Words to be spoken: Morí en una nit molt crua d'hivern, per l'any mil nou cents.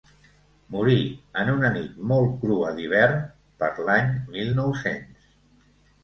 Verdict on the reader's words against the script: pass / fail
pass